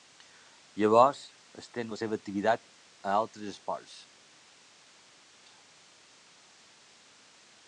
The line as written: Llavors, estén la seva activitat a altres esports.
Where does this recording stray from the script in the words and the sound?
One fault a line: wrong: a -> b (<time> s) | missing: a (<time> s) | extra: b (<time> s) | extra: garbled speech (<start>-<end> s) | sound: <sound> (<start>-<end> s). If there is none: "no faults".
no faults